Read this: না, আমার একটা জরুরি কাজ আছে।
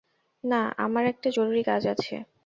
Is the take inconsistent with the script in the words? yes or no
no